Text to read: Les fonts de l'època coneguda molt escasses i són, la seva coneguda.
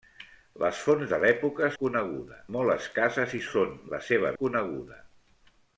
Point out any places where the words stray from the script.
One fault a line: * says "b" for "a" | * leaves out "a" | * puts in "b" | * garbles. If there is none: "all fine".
all fine